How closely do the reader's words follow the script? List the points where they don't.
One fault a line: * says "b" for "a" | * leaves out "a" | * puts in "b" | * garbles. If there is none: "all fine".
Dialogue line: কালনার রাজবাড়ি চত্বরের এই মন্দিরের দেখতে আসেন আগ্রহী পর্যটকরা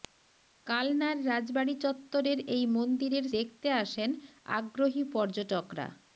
all fine